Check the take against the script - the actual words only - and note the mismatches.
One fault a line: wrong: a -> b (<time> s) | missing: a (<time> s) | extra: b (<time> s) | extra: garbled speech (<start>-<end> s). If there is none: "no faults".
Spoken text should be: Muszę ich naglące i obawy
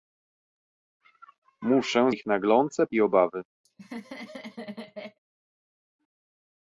no faults